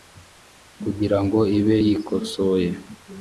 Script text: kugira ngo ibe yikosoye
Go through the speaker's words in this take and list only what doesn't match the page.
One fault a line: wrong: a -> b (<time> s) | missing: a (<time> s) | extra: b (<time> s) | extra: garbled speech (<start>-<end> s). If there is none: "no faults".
no faults